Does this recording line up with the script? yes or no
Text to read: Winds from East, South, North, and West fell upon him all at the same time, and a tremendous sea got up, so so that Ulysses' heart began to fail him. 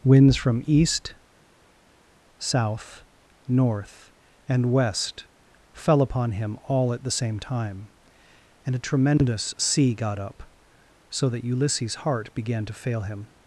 no